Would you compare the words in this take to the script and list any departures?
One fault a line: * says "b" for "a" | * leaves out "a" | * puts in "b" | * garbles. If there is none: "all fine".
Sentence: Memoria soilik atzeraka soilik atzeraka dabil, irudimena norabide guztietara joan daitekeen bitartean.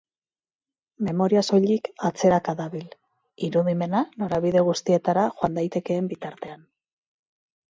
* leaves out "soilik atzeraka"